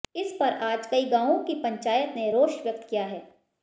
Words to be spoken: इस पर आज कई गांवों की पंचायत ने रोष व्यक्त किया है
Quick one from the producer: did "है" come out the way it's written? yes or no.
yes